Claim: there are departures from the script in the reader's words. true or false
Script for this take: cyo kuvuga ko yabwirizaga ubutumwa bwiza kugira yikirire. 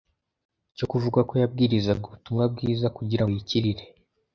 false